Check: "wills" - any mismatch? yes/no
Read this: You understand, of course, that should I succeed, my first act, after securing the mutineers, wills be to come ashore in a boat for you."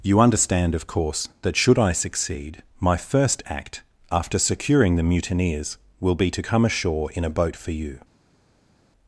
yes